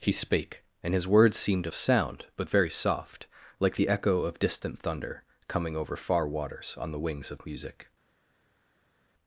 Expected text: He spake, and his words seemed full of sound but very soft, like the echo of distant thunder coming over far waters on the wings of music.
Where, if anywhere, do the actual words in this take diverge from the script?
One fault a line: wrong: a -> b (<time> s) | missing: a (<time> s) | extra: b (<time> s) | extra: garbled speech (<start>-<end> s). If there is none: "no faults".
missing: full (1.7 s)